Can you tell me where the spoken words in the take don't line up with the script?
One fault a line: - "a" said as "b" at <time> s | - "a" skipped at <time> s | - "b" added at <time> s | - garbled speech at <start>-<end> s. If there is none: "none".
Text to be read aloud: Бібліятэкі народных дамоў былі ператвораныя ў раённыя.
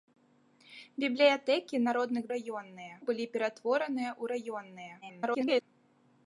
- "дамоў" said as "раённыя" at 2.3 s
- garbled speech at 5.0-5.6 s